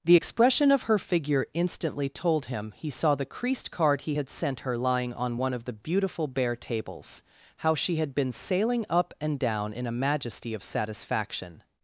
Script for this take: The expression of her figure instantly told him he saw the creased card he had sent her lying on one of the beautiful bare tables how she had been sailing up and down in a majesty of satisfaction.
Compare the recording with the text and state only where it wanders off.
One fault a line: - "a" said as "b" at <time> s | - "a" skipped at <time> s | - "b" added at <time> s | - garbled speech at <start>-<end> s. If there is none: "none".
none